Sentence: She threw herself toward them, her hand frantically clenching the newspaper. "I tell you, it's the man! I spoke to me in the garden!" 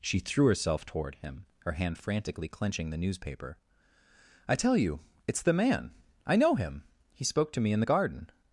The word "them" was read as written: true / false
false